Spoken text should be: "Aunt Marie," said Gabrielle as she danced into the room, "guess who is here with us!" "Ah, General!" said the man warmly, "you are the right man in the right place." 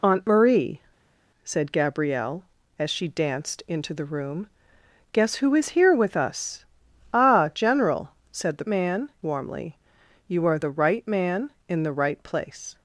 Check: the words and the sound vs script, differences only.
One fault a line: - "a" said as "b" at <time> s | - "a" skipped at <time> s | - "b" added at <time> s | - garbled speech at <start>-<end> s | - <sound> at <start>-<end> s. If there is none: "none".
none